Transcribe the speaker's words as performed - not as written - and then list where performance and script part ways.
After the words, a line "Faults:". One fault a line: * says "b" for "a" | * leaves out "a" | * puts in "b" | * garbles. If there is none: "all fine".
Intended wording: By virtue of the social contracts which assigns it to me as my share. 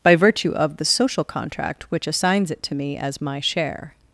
By virtue of the social contract which assigns it to me as my share.
Faults:
* says "contract" for "contracts"